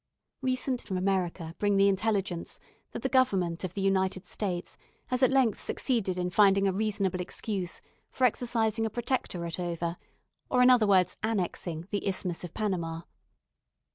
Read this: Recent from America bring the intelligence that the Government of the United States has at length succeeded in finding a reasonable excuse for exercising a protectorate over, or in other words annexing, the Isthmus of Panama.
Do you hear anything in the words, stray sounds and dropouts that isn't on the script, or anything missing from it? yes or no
no